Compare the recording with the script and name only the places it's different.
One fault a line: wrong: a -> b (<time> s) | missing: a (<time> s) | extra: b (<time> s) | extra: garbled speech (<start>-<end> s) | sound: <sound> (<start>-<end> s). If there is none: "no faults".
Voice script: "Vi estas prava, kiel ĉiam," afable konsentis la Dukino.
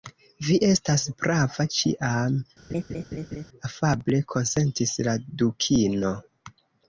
missing: kiel (1.6 s)
sound: laugh (2.7-3.5 s)